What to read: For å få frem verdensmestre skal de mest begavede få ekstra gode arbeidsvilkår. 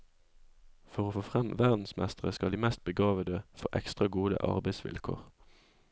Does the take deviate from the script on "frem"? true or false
false